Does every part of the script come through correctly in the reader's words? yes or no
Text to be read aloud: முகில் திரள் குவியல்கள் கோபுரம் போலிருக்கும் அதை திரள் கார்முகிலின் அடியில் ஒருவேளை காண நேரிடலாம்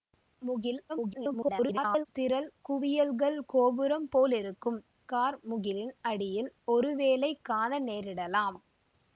no